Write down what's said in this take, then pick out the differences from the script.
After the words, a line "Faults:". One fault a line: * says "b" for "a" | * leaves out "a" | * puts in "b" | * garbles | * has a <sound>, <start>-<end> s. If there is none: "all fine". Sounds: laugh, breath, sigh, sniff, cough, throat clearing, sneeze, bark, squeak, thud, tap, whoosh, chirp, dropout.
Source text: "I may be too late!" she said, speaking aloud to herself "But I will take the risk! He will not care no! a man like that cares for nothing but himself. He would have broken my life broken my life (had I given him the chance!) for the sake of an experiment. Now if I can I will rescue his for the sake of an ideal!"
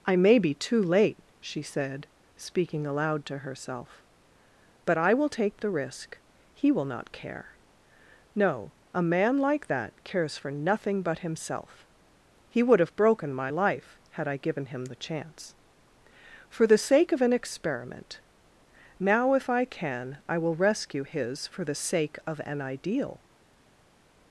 "I may be too late!" she said, speaking aloud to herself "But I will take the risk! He will not care no! a man like that cares for nothing but himself. He would have broken my life (had I given him the chance!) for the sake of an experiment. Now if I can I will rescue his for the sake of an ideal!"
Faults:
* leaves out "broken my life"